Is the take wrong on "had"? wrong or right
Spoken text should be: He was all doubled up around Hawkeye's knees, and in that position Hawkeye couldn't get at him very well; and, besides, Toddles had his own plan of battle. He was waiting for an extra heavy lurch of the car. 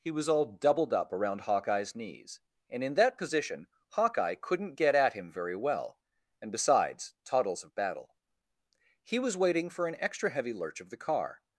wrong